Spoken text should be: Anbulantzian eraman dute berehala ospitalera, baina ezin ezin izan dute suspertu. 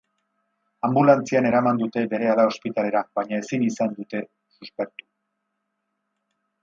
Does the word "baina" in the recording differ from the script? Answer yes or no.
no